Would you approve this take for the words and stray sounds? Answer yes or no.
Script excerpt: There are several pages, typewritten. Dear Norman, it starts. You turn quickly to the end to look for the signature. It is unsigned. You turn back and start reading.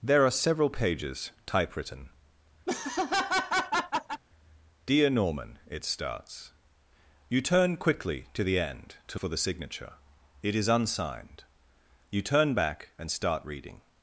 no